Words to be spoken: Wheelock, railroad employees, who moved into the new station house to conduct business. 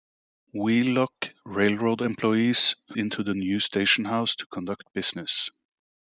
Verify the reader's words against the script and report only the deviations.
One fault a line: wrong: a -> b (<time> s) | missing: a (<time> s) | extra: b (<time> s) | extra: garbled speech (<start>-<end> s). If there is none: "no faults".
missing: who moved (2.8 s)